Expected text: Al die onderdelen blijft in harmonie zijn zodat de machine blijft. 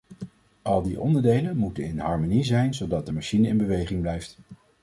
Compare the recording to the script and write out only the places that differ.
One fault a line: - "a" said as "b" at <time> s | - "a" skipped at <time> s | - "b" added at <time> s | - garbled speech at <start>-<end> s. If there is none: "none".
- "blijft" said as "moeten" at 1.6 s
- "in beweging" added at 3.5 s